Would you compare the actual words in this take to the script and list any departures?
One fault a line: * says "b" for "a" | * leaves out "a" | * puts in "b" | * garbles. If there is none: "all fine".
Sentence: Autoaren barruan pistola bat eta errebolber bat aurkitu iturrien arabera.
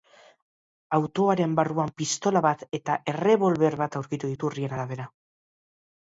all fine